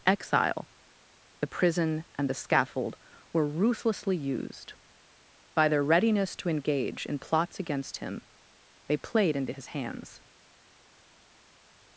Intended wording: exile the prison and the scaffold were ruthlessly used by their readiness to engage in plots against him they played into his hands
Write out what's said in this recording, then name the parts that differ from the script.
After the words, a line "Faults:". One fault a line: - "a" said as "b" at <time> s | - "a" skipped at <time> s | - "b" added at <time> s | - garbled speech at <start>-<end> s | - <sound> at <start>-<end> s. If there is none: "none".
exile the prison and the scaffold were ruthlessly used by their readiness to engage in plots against him they played into his hands
Faults:
none